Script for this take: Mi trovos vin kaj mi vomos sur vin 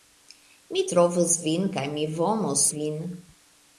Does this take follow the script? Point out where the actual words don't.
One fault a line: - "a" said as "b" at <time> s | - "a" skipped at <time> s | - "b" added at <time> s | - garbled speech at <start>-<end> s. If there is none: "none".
- "sur" skipped at 2.7 s